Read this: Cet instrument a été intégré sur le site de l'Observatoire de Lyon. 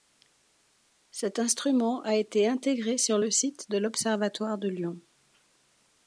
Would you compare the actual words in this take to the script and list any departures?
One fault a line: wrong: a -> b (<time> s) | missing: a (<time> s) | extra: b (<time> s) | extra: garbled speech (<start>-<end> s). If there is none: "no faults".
no faults